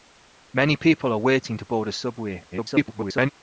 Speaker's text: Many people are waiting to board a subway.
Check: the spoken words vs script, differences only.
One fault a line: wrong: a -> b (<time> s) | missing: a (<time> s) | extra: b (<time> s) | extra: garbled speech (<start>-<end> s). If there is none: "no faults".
extra: garbled speech (2.5-3.3 s)